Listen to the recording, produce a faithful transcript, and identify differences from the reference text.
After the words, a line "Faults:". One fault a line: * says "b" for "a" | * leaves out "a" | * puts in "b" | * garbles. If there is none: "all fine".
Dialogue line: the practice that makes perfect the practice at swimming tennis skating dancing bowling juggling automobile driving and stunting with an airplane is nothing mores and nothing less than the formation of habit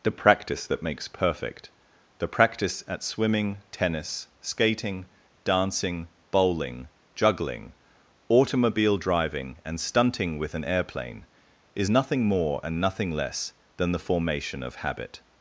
the practice that makes perfect the practice at swimming tennis skating dancing bowling juggling automobile driving and stunting with an airplane is nothing more and nothing less than the formation of habit
Faults:
* says "more" for "mores"